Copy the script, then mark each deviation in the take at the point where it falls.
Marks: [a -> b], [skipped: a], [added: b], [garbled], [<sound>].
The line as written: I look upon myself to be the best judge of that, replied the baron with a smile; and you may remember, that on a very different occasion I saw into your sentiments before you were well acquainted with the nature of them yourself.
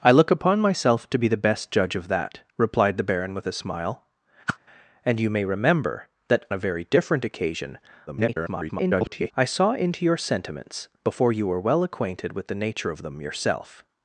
I look upon myself to be the best judge of that, replied the baron with a smile; [whoosh] and you may remember, that [skipped: on] a very different occasion [garbled] I saw into your sentiments before you were well acquainted with the nature of them yourself.